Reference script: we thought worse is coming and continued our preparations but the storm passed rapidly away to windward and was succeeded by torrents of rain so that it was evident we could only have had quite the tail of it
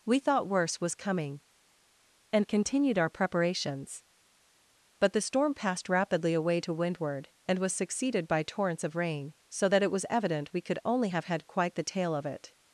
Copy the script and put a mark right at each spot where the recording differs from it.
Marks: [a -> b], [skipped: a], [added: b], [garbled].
we thought worse [is -> was] coming and continued our preparations but the storm passed rapidly away to windward and was succeeded by torrents of rain so that it was evident we could only have had quite the tail of it